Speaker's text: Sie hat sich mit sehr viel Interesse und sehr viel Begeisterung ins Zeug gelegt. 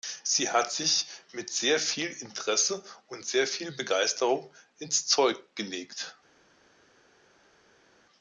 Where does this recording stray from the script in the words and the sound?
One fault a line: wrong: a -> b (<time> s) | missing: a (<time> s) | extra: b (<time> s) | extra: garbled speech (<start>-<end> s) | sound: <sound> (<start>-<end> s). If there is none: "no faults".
no faults